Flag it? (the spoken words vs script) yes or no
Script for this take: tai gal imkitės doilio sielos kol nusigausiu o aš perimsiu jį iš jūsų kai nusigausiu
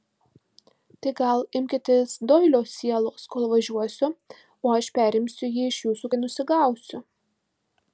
yes